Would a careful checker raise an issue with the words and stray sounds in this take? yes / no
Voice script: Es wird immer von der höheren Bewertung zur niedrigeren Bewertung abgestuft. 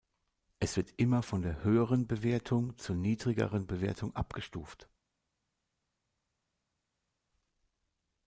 no